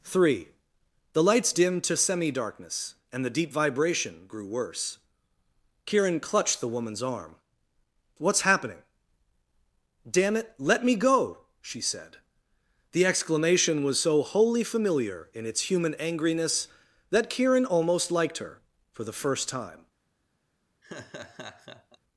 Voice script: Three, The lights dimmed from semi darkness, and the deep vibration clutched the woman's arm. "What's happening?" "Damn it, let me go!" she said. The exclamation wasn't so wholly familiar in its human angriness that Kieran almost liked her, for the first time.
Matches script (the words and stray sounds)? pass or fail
fail